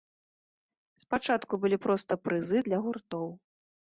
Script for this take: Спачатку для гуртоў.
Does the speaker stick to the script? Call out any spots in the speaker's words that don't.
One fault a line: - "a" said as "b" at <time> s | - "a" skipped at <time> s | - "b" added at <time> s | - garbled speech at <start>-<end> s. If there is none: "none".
- "былі проста прызы" added at 1.6 s